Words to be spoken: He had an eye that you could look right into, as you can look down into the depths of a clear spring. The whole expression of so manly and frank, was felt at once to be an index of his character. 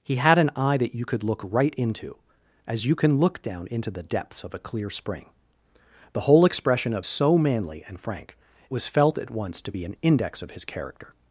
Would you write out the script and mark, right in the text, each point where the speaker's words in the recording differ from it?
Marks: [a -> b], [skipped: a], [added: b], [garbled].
He had an eye that you could look right into, as you can look down into the depths of a clear spring. The whole expression of so manly and frank, was felt at once to be an index of his character.